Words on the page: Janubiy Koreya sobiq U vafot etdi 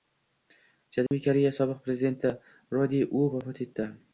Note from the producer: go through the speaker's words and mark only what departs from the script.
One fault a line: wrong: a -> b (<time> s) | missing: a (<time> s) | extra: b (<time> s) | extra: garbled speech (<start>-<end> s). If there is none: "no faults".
extra: prezidenti Ro De (1.9 s)